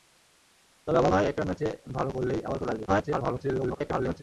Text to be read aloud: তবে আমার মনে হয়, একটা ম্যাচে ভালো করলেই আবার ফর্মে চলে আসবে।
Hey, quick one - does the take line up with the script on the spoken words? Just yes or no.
no